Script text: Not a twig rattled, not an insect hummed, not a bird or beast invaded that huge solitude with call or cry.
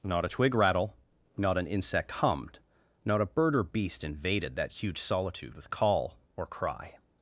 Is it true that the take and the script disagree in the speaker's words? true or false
true